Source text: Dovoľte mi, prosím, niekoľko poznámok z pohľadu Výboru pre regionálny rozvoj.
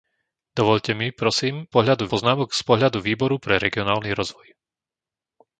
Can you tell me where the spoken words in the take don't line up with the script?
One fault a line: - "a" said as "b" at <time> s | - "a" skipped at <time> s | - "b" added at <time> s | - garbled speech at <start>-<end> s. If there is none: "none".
- "niekoľko" said as "pohľadu" at 1.7 s